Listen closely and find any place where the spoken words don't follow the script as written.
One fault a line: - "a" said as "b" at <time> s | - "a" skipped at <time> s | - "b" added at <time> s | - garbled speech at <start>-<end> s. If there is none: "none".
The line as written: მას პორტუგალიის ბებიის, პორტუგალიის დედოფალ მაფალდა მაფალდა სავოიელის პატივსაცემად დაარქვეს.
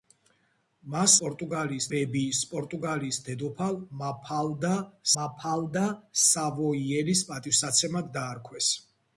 none